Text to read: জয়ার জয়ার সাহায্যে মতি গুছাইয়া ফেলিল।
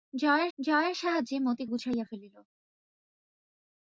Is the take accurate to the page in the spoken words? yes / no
yes